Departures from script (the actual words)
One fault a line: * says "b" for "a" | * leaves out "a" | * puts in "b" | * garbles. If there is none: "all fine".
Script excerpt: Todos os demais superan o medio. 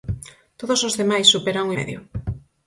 all fine